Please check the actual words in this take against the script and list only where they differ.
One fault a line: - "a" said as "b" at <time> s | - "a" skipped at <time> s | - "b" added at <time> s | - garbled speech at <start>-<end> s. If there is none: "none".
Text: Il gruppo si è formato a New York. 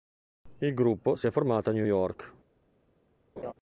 none